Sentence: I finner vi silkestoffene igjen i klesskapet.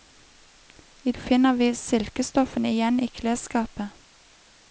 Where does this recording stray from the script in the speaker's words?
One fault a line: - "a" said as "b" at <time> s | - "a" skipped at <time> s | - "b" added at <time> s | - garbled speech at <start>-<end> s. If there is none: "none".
none